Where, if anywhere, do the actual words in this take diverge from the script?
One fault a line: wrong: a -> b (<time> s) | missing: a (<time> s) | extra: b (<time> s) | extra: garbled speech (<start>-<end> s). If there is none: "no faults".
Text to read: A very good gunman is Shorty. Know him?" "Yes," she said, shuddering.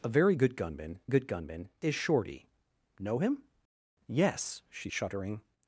extra: good gunman (1.1 s)
missing: said (4.9 s)